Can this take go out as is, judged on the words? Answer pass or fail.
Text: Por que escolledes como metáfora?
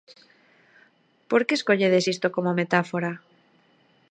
fail